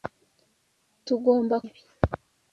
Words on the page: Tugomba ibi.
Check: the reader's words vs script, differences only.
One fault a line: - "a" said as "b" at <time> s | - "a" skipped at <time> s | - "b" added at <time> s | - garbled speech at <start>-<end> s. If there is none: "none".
none